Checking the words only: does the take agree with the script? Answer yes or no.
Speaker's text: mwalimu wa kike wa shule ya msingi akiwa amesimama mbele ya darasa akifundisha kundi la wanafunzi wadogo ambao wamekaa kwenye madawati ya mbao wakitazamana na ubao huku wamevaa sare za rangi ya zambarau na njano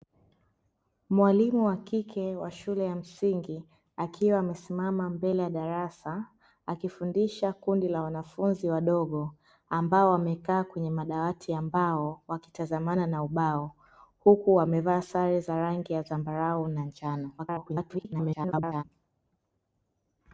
no